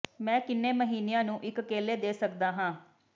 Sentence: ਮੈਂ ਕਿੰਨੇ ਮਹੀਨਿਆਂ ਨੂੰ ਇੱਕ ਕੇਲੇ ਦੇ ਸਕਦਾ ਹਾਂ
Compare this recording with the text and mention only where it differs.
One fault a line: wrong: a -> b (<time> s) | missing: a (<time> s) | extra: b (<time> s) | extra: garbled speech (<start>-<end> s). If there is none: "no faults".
no faults